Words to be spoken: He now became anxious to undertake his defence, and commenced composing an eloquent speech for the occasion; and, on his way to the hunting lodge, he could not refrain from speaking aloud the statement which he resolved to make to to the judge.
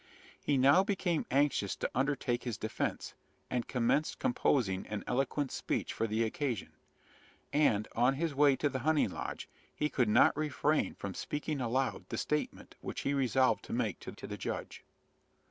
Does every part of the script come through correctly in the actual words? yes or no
yes